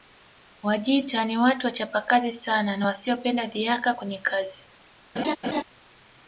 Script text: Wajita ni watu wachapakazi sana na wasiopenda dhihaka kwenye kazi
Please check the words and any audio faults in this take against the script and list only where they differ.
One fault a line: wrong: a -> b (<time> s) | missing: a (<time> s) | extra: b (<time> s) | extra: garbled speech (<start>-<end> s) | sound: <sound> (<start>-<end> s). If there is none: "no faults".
sound: laugh (5.2-5.6 s)